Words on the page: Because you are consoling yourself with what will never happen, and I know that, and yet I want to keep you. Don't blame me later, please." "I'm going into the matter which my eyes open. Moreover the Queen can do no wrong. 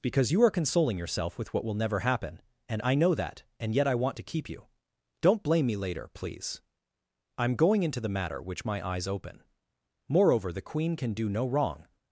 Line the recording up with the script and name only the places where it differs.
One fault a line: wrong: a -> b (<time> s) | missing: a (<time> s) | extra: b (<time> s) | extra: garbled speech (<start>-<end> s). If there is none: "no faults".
no faults